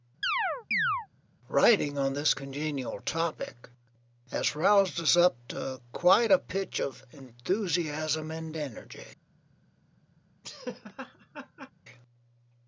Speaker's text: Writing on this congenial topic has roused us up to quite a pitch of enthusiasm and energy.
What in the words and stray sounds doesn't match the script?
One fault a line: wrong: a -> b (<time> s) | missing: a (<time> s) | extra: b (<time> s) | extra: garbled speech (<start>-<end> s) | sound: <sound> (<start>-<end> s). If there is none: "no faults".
sound: chirp (0.2-1.1 s)
sound: laugh (10.4-11.7 s)